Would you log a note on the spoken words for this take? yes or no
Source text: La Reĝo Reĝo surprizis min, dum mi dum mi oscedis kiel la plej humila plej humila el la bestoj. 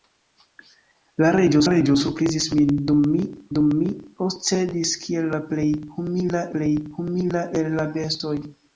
no